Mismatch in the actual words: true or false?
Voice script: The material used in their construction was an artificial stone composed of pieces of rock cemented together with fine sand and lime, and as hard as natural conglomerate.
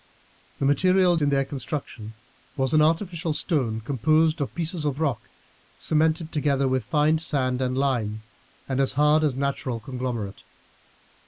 true